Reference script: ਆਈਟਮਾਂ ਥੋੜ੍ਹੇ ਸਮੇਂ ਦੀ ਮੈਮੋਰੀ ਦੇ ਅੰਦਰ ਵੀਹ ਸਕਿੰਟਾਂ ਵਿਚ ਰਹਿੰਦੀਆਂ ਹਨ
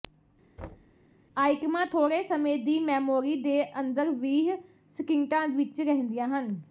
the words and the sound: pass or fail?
fail